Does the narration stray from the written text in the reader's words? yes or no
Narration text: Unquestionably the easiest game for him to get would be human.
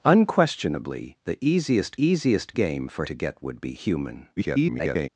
yes